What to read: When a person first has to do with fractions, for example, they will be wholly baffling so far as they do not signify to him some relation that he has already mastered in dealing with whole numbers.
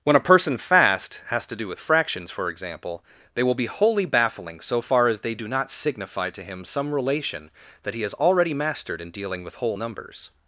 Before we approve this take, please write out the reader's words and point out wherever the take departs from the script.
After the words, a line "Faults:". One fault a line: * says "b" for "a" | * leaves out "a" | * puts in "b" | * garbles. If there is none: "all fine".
When a person fast has to do with fractions, for example, they will be wholly baffling so far as they do not signify to him some relation that he has already mastered in dealing with whole numbers.
Faults:
* says "fast" for "first"